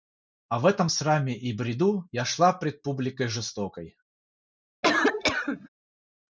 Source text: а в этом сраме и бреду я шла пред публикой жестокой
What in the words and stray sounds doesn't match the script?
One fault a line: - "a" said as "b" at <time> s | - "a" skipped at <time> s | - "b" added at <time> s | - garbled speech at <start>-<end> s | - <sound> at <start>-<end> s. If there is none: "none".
- cough at 4.8-5.7 s